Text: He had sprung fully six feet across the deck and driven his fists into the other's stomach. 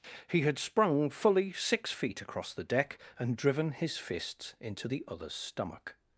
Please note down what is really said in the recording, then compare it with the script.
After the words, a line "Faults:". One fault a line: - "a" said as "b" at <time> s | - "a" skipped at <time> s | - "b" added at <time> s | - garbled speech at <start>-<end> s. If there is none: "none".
He had sprung fully six feet across the deck and driven his fists into the other's stomach.
Faults:
none